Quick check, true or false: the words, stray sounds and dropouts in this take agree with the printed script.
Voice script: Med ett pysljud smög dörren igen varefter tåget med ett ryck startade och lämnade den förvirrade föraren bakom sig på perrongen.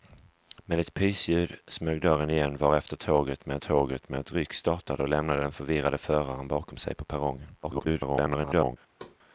false